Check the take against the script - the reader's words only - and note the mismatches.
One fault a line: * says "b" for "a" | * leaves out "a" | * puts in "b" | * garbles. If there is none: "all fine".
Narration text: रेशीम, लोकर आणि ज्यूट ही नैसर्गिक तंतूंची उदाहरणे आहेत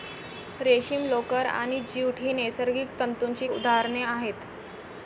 all fine